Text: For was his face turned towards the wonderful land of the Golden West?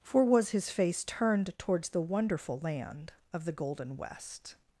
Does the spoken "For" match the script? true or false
true